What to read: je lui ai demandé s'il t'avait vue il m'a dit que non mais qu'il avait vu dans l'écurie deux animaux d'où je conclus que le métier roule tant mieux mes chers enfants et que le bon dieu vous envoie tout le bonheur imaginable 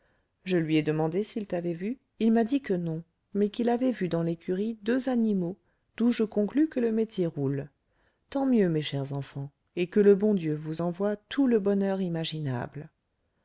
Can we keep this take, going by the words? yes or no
yes